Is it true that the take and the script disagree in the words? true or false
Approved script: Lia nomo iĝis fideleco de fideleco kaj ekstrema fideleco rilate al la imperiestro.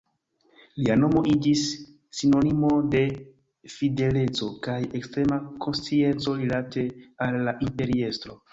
true